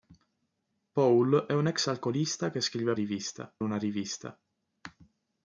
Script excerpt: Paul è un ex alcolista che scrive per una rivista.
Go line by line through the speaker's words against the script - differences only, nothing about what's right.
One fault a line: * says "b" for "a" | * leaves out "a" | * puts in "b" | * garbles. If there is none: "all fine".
* says "rivista" for "per"